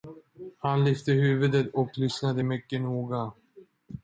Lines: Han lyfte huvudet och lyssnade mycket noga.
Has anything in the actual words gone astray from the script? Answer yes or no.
no